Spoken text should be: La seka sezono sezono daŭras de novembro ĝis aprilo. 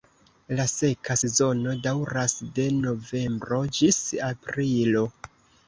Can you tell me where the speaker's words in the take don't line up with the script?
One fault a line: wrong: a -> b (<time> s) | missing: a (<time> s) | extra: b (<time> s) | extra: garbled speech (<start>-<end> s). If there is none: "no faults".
missing: sezono (1.7 s)